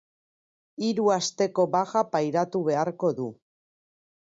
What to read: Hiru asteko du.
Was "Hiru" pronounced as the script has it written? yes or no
yes